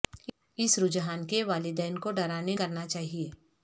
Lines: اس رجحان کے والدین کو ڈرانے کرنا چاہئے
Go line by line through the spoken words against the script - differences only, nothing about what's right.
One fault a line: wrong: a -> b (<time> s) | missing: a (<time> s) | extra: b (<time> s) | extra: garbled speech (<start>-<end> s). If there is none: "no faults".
no faults